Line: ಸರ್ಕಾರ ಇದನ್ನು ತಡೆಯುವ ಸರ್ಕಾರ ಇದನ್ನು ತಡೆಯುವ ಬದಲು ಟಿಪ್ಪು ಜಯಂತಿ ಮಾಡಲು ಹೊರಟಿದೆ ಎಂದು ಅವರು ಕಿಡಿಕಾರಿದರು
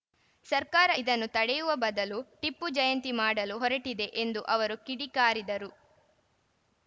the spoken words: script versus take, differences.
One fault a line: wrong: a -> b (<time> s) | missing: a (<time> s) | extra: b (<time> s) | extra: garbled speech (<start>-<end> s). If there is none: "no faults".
missing: ಸರ್ಕಾರ ಇದನ್ನು ತಡೆಯುವ (1.7 s)